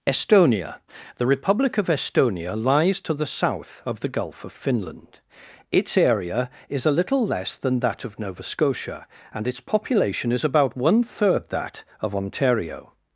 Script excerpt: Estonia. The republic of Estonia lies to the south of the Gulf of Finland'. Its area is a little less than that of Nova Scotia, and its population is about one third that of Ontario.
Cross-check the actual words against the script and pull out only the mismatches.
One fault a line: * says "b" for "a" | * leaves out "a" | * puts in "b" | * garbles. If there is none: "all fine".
all fine